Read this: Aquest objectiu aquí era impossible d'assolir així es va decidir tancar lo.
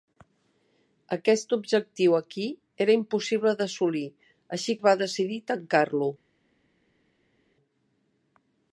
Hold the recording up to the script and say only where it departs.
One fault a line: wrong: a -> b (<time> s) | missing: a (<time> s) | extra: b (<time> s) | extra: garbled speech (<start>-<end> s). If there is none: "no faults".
no faults